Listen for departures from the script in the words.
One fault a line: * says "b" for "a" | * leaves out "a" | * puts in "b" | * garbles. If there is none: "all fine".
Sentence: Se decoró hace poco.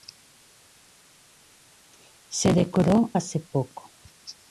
all fine